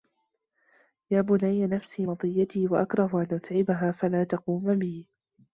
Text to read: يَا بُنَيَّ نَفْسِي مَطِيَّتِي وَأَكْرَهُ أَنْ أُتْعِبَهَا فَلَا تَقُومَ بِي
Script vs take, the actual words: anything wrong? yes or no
no